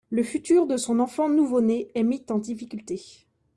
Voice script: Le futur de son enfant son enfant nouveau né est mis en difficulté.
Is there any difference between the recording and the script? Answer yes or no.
yes